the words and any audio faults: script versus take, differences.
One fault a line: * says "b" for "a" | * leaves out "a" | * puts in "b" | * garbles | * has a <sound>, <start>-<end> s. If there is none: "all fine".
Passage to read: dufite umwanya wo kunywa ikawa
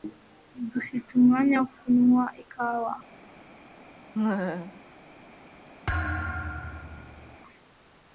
* has a laugh, 4.1-4.8 s
* has a thud, 5.9-7.4 s